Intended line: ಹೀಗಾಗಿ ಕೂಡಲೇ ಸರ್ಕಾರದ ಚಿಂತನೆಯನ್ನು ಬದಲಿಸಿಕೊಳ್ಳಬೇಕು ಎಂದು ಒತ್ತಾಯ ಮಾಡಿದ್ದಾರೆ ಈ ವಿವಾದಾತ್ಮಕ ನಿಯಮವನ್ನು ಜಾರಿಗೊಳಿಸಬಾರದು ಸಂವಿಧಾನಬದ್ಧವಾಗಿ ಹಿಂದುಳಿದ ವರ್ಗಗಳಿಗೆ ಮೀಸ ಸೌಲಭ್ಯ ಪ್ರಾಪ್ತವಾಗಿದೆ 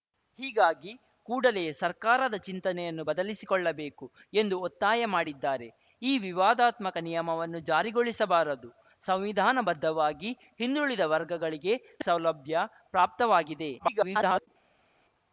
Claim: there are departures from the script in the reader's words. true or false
true